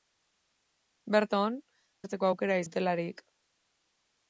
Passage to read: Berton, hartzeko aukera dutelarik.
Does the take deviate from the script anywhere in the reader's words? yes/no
no